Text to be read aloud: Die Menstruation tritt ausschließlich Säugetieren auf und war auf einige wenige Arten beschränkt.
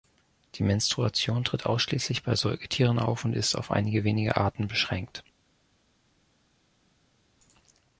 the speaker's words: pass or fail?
fail